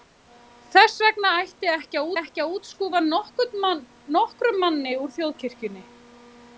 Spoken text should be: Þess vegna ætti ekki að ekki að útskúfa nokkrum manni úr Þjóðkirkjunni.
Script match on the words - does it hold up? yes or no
yes